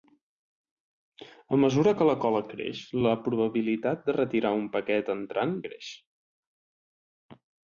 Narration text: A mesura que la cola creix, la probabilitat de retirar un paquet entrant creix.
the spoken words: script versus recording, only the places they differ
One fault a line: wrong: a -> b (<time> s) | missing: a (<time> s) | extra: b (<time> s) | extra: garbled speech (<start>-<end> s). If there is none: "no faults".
no faults